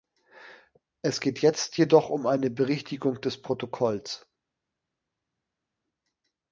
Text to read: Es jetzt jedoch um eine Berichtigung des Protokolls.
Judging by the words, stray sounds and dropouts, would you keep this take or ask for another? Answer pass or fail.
fail